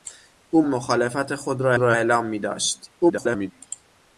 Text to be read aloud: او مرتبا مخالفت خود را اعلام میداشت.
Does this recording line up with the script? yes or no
no